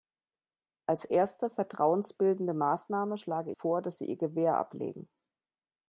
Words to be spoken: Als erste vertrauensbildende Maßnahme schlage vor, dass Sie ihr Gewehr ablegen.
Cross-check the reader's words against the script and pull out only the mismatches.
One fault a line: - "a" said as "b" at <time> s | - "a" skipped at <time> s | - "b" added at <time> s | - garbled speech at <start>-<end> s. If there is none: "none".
none